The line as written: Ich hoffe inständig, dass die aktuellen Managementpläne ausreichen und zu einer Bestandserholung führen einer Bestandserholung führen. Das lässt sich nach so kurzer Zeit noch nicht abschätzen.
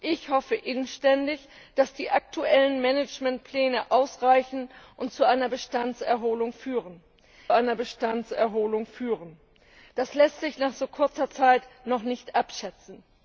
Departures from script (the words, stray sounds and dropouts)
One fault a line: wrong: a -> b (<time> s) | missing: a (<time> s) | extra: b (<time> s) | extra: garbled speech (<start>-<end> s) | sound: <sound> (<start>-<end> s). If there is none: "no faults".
no faults